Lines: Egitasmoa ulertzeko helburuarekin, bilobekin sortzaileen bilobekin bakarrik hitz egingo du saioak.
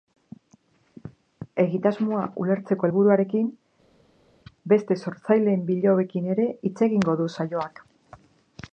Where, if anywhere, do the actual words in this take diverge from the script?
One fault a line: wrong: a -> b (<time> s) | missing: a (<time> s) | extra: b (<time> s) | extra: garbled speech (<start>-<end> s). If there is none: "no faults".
wrong: bilobekin -> beste (4.7 s)
wrong: bakarrik -> ere (6.3 s)